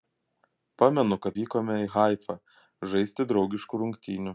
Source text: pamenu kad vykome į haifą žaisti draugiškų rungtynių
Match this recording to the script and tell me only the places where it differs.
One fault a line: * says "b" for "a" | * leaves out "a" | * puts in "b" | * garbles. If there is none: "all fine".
all fine